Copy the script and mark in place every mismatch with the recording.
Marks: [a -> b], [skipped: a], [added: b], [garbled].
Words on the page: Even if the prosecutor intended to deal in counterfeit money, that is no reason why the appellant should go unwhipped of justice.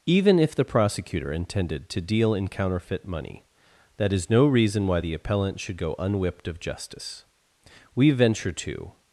Even if the prosecutor intended to deal in counterfeit money, that is no reason why the appellant should go unwhipped of justice. [added: We venture to]